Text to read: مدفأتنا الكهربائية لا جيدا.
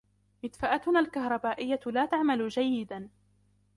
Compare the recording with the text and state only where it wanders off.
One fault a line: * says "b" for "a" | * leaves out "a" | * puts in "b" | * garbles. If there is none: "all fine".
* puts in "تعمل"